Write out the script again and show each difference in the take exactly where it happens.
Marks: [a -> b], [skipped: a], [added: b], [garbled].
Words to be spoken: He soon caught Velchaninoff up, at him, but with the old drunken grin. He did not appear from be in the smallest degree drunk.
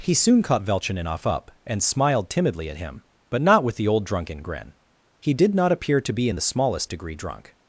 He soon caught Velchaninoff up, [added: and smiled timidly] at him, but [added: not] with the old drunken grin. He did not appear [from -> to] be in the smallest degree drunk.